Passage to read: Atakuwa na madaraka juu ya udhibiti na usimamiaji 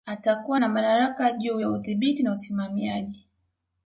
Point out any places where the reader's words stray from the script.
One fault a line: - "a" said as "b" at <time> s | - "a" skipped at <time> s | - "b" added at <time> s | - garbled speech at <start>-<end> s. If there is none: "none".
none